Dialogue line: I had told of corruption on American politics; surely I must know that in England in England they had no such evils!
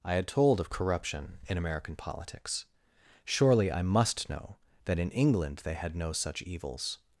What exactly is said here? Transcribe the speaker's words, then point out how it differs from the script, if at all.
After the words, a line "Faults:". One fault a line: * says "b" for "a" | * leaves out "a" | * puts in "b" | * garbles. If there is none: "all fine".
I had told of corruption in American politics; surely I must know that in England they had no such evils!
Faults:
* says "in" for "on"
* leaves out "in England"